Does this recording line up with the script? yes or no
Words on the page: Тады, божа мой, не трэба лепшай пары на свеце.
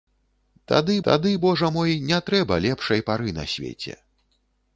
no